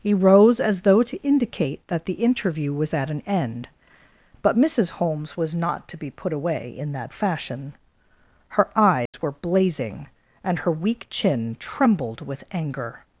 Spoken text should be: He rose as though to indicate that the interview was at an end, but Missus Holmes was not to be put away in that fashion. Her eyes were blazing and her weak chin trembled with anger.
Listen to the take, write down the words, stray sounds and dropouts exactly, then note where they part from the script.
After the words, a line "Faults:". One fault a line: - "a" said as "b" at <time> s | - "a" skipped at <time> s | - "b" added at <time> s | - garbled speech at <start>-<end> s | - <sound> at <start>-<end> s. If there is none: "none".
He rose as though to indicate that the interview was at an end, but Missus Holmes was not to be put away in that fashion. Her eyes were blazing and her weak chin trembled with anger.
Faults:
- dropout at 9.1-9.1 s